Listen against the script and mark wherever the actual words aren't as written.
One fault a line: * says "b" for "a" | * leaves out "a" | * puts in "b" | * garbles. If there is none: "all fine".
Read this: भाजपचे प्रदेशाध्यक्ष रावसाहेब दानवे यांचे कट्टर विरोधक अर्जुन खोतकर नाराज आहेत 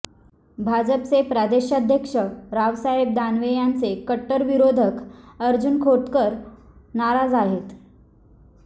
all fine